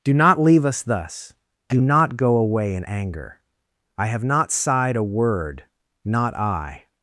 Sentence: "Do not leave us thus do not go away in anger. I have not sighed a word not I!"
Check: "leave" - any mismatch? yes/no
no